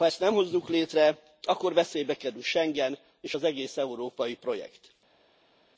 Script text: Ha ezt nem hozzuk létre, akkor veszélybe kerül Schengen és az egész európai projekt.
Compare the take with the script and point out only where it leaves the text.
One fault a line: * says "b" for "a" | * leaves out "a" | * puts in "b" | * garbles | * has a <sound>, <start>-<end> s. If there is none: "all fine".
all fine